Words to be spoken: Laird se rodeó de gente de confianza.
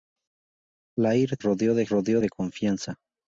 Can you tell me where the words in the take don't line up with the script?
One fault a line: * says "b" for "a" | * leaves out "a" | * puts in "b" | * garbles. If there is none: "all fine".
* leaves out "se"
* says "rodeó" for "gente"